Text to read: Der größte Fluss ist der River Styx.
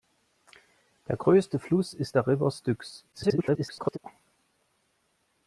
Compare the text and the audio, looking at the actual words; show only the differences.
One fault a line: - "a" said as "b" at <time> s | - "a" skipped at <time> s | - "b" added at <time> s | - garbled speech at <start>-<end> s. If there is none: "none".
- garbled speech at 3.1-4.0 s